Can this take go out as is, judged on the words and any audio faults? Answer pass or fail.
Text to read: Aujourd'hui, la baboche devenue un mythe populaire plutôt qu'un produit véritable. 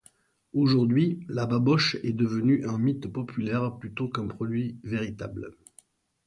fail